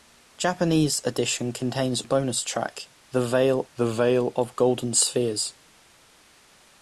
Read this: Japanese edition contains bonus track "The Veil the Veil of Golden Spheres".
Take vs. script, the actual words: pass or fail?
pass